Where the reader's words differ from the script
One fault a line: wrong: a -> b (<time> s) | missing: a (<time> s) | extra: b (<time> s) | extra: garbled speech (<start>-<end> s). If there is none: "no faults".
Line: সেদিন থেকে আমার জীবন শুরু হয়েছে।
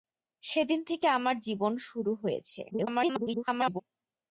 extra: garbled speech (2.7-3.8 s)